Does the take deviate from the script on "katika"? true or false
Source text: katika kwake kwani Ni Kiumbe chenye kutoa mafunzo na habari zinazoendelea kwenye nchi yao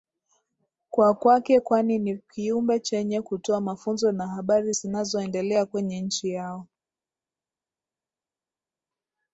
true